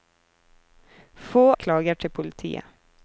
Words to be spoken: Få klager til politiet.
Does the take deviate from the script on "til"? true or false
false